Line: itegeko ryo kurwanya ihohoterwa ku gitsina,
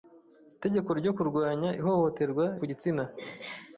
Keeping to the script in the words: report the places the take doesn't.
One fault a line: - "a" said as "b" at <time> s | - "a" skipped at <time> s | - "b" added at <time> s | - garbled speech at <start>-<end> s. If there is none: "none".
none